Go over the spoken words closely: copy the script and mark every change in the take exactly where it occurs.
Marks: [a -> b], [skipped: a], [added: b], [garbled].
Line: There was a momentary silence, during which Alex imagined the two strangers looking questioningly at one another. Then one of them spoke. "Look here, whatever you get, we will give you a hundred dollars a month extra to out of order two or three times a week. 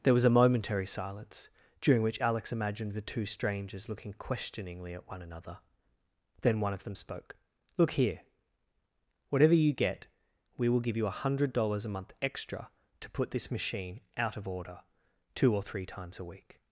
There was a momentary silence, during which Alex imagined the two strangers looking questioningly at one another. Then one of them spoke. "Look here, whatever you get, we will give you a hundred dollars a month extra to [added: put this machine] out of order two or three times a week.